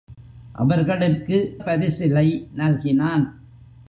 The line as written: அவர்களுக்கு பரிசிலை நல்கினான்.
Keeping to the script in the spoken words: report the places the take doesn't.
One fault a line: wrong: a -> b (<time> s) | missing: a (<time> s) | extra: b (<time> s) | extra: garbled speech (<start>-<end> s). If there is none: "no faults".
no faults